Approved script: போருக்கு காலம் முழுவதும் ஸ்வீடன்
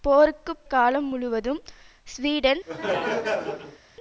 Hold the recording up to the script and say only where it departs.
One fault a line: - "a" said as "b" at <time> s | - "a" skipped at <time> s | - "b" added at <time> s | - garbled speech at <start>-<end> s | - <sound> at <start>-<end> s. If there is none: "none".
- laugh at 2.7-3.8 s